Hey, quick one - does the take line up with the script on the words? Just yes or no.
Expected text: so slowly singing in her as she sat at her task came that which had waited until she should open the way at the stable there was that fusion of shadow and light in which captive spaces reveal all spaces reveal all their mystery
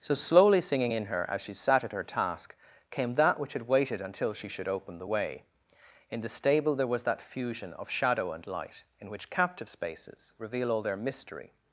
no